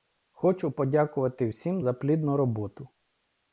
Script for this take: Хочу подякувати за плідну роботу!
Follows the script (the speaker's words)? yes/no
no